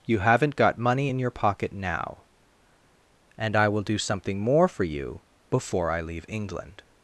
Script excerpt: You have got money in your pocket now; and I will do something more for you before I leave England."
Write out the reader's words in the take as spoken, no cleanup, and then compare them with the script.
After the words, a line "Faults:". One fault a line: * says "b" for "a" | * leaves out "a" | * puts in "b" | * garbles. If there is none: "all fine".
You haven't got money in your pocket now; and I will do something more for you before I leave England."
Faults:
* says "haven't" for "have"